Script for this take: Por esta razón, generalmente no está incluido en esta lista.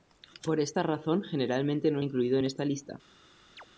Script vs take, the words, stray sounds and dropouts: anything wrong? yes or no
yes